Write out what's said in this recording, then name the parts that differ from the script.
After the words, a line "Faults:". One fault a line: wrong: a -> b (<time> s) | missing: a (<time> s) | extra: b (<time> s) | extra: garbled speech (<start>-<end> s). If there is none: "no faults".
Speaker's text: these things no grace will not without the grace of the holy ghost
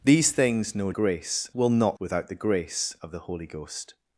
these things no grace will not without the grace of the holy ghost
Faults:
no faults